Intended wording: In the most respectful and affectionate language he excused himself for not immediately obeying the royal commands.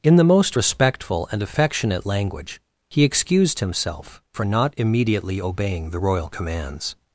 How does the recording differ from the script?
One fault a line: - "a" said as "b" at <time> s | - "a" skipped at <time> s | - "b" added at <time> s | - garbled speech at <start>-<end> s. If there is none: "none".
none